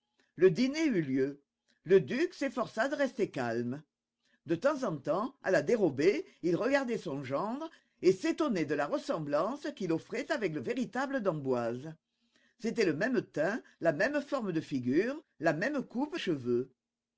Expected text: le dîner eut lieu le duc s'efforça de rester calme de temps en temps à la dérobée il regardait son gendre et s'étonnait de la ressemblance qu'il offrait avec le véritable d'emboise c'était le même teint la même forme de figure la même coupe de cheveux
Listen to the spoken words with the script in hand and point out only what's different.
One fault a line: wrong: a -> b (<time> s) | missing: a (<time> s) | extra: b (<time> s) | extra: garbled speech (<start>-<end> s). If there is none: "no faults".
missing: de (16.2 s)